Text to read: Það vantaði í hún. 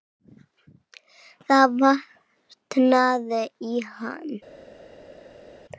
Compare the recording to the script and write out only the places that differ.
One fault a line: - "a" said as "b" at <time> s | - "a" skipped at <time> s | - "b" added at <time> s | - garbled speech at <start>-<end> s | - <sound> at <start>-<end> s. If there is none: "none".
- "hún" said as "hann" at 3.9 s